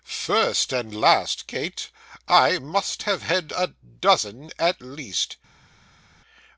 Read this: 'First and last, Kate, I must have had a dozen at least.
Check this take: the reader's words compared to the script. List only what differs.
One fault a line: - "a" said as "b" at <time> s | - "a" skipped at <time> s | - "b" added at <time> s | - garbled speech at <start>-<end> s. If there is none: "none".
none